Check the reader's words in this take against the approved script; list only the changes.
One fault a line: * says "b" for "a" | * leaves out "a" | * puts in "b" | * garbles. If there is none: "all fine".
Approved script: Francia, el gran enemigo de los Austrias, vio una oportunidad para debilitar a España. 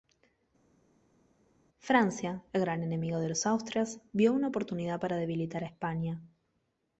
all fine